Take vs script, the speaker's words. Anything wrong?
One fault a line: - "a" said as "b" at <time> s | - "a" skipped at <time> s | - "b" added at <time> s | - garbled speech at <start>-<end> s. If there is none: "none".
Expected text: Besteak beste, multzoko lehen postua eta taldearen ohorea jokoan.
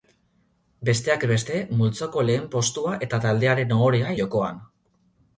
none